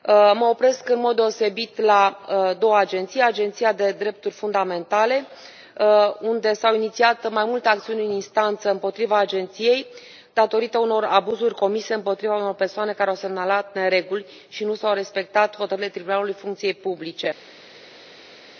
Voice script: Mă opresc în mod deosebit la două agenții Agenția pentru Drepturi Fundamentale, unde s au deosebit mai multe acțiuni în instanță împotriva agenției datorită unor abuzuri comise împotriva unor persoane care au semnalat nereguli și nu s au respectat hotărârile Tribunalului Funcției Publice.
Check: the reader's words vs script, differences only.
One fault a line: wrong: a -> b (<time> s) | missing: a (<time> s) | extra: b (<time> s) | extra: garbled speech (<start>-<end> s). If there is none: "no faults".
wrong: deosebit -> inițiat (6.8 s)